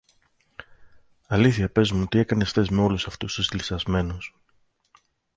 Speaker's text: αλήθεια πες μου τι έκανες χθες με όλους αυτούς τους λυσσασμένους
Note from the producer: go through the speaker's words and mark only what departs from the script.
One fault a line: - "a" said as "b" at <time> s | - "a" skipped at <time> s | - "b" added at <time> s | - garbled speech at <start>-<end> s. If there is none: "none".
none